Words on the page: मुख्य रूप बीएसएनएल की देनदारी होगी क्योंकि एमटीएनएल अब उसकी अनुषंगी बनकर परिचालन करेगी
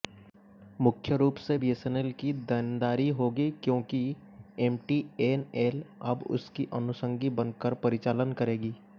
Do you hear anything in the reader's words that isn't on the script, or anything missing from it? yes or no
yes